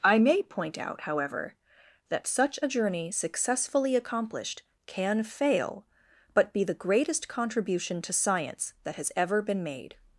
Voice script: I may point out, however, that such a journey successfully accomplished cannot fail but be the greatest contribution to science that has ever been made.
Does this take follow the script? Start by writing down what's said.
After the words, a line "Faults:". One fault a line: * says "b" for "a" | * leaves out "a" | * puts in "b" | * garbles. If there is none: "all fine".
I may point out, however, that such a journey successfully accomplished can fail but be the greatest contribution to science that has ever been made.
Faults:
* says "can" for "cannot"